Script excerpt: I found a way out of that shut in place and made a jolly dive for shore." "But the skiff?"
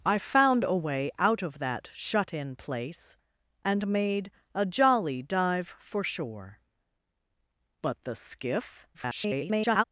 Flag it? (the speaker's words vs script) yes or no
yes